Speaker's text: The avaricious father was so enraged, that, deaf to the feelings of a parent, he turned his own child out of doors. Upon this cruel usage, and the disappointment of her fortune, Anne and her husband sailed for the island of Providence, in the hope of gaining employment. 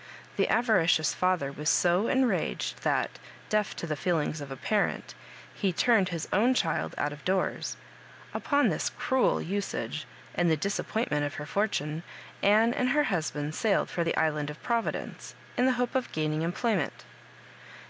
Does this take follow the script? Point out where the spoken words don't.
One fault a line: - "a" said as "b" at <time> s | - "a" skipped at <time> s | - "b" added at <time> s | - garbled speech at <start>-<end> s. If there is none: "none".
none